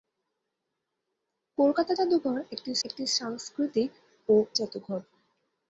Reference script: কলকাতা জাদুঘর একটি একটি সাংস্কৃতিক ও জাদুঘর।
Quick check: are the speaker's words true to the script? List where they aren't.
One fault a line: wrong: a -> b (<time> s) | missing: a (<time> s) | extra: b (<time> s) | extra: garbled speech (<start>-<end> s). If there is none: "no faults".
no faults